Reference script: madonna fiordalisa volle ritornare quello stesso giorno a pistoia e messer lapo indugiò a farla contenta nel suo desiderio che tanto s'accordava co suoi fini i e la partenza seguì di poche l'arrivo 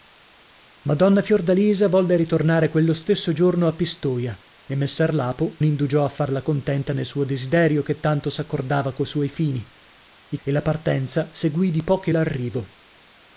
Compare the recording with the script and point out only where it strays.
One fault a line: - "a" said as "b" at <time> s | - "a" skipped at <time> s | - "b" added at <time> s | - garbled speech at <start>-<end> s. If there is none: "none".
none